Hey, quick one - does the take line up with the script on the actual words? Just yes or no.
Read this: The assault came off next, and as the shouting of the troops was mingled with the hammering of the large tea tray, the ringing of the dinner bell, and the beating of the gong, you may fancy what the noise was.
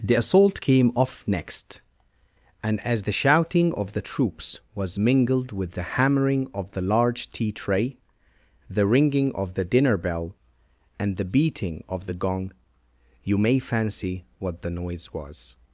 yes